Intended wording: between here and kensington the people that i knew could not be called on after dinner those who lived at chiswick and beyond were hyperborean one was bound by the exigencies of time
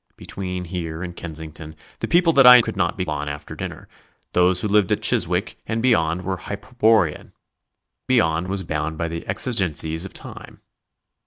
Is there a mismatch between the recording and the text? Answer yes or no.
yes